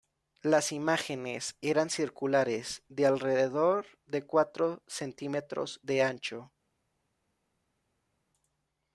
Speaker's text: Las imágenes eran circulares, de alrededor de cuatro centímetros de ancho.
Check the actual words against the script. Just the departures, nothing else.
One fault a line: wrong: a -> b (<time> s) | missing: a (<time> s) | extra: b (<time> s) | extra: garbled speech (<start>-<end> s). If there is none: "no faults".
no faults